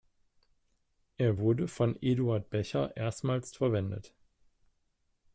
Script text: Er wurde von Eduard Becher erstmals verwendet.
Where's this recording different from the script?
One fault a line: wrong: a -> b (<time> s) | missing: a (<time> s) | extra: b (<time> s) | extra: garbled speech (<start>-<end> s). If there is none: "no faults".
no faults